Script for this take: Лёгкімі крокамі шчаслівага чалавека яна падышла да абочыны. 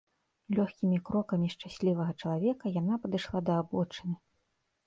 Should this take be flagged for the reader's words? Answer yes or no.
no